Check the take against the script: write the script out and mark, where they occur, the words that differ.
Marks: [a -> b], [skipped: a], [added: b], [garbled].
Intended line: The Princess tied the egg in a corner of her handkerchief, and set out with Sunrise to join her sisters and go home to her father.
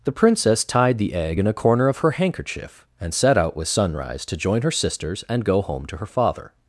The Princess tied the egg in a corner of her handkerchief, and set out with Sunrise to join her sisters and go home to her father.